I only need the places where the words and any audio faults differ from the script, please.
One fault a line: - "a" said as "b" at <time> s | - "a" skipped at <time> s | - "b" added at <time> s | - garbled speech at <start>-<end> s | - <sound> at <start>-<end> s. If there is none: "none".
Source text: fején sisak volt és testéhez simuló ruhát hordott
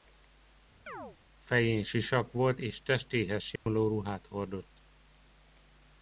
- chirp at 0.9-1.2 s
- dropout at 3.6-3.7 s